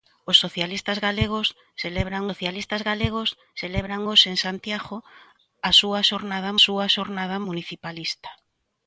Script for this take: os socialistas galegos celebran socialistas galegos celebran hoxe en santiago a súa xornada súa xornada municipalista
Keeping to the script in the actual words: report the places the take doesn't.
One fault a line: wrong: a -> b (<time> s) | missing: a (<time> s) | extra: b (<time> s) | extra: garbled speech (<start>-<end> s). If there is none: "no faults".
no faults